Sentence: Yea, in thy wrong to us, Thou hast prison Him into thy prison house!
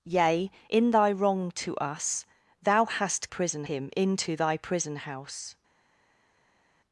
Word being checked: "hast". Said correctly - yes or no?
yes